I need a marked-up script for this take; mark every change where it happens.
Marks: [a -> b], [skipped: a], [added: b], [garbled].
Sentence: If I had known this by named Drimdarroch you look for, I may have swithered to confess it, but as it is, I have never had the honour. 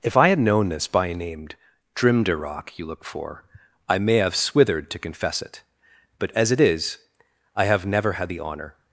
If I had known this by named Drimdarroch you look for, I may have swithered to confess it, but as it is, I have never had the honour.